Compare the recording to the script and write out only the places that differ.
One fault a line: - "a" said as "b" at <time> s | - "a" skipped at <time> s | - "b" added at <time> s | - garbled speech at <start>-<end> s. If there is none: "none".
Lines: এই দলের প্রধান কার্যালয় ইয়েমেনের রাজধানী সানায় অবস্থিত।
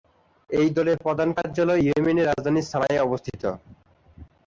none